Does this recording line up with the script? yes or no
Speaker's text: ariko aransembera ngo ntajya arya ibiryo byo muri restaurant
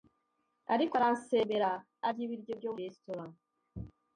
no